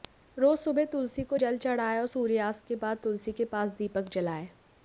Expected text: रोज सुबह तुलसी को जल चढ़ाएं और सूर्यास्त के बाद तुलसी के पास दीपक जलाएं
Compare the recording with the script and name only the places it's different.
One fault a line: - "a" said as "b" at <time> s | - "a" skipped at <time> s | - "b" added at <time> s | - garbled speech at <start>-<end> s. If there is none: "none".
none